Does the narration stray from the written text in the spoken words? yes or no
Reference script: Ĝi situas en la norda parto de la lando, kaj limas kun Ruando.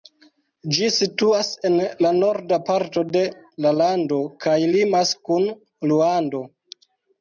no